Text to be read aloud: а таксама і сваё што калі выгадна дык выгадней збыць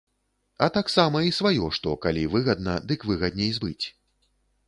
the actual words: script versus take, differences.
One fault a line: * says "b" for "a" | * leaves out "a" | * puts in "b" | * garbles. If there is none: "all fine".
all fine